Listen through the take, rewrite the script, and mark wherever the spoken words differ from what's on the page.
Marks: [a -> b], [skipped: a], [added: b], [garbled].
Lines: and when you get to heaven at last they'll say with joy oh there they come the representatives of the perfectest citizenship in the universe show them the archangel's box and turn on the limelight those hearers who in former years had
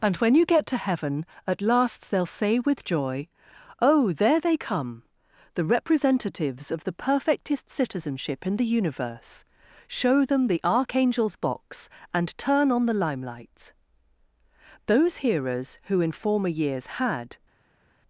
and when you get to heaven at last they'll say with joy oh there they come the representatives of the perfectest citizenship in the universe show them the archangel's box and turn on the limelight those hearers who in former years had